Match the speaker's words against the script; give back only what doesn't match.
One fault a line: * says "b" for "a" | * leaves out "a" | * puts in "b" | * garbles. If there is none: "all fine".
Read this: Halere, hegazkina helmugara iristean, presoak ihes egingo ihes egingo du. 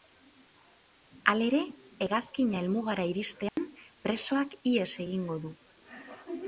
* leaves out "ihes egingo"